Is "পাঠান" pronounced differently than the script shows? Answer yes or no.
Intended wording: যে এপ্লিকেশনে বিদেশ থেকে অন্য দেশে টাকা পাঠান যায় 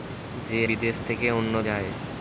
yes